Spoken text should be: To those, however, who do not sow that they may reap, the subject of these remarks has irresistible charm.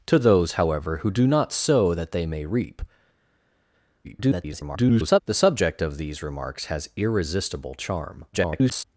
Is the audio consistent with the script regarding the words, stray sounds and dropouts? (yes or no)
no